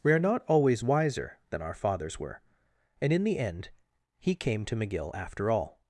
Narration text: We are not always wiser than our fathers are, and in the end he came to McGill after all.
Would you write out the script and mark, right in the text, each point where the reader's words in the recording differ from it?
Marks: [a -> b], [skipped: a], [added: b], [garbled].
We are not always wiser than our fathers [are, -> were] and in the end he came to McGill after all.